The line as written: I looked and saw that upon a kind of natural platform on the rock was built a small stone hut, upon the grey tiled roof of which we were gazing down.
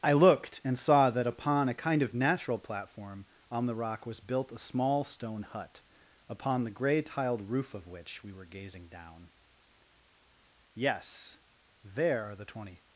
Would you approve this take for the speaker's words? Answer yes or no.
no